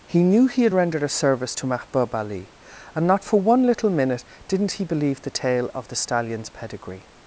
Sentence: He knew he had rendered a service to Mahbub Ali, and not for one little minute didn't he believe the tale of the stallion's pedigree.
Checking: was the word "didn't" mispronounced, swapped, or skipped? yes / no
no